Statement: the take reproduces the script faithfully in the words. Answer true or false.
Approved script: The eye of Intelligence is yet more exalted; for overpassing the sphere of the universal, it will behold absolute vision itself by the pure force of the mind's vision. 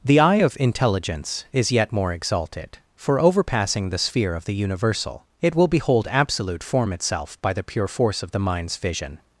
false